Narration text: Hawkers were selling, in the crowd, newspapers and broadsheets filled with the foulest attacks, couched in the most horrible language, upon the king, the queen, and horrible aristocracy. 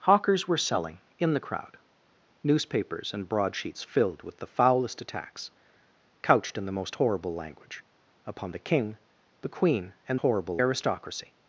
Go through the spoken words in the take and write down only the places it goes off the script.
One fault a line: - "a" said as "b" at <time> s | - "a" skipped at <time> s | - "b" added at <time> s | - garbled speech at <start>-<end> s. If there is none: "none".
none